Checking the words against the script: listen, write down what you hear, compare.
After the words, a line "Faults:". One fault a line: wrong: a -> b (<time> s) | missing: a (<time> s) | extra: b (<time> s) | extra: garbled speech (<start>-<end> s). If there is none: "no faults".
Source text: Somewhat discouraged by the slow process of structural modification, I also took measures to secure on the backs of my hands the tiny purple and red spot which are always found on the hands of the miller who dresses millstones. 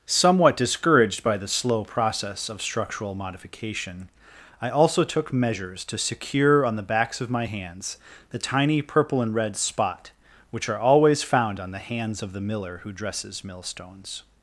Somewhat discouraged by the slow process of structural modification, I also took measures to secure on the backs of my hands the tiny purple and red spot which are always found on the hands of the miller who dresses millstones.
Faults:
no faults